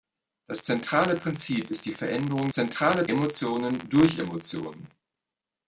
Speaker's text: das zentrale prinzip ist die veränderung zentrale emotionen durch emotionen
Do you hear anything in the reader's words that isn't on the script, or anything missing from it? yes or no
no